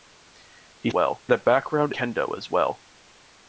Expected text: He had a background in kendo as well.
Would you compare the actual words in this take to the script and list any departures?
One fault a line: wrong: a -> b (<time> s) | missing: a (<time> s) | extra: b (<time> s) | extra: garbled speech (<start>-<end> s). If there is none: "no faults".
wrong: had -> well (0.9 s)
missing: in (1.9 s)